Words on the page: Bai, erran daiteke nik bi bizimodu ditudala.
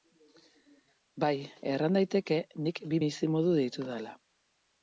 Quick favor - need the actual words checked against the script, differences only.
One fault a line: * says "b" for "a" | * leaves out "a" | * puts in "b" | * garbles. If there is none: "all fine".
all fine